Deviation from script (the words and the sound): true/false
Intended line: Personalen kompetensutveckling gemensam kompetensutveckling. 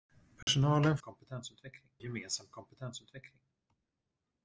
true